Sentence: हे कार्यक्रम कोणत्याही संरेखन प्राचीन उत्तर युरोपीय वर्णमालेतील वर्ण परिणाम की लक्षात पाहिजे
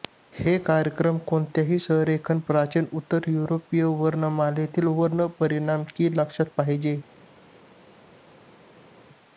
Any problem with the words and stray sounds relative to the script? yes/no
no